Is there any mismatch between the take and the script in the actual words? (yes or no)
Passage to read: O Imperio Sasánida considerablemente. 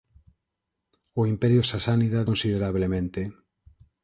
no